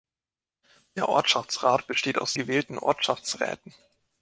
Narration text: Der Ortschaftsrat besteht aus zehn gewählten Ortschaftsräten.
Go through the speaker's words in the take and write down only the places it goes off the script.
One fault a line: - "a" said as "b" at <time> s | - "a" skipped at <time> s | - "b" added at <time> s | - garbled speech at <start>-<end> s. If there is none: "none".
- "zehn" skipped at 2.4 s